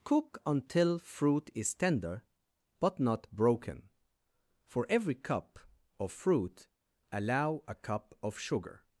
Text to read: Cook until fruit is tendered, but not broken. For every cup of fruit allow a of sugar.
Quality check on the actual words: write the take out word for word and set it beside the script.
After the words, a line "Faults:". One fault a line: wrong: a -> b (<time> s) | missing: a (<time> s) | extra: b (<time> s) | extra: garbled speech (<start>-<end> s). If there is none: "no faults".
Cook until fruit is tender, but not broken. For every cup of fruit allow a cup of sugar.
Faults:
wrong: tendered -> tender (1.7 s)
extra: cup (7.8 s)